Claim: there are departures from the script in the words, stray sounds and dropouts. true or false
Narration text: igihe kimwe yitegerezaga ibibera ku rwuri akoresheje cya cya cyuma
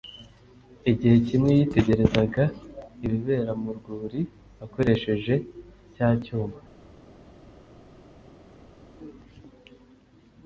true